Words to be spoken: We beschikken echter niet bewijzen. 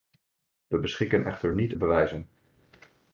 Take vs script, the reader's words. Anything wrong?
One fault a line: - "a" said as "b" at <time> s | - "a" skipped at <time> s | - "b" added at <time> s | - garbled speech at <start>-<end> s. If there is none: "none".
none